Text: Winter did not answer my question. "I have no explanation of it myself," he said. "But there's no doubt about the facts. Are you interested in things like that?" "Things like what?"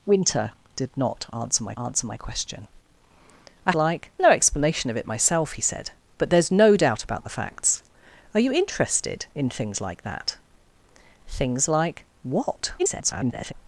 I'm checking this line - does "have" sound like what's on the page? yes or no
no